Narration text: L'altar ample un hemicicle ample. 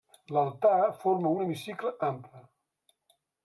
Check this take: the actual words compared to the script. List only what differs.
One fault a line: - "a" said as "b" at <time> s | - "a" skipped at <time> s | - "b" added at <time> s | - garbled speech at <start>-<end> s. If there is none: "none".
- "ample" said as "forma" at 1.0 s